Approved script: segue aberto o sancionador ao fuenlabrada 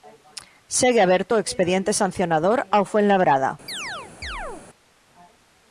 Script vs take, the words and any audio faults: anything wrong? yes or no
yes